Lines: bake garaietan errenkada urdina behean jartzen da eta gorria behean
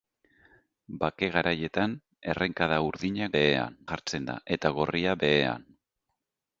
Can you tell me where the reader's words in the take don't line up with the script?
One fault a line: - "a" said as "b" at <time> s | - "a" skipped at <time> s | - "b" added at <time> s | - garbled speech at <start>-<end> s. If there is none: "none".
none